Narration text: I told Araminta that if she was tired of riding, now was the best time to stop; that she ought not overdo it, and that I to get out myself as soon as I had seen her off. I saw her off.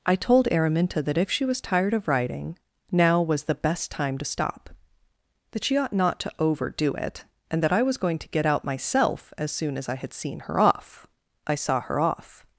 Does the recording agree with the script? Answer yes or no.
no